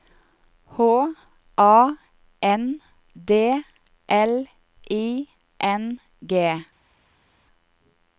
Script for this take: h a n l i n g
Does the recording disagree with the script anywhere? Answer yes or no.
yes